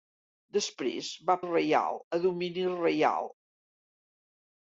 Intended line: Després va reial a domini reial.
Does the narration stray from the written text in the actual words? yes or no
no